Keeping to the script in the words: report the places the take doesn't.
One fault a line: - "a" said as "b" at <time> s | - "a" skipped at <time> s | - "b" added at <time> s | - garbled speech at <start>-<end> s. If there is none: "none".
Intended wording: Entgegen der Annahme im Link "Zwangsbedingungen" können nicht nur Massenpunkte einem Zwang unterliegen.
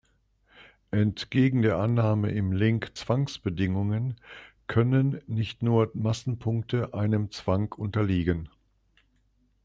none